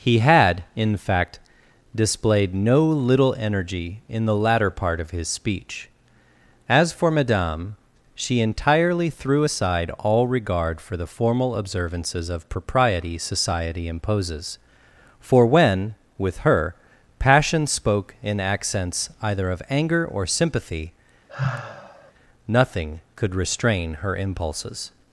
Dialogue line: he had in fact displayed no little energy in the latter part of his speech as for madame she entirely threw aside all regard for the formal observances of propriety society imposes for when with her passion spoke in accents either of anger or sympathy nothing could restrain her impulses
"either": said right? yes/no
yes